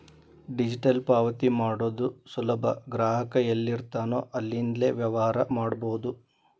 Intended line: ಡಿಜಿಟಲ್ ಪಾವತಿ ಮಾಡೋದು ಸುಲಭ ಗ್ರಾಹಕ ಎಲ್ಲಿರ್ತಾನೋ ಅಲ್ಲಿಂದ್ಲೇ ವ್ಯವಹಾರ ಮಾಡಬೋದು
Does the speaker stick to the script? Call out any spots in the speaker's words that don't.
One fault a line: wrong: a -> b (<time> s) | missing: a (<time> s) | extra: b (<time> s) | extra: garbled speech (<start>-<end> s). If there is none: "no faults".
no faults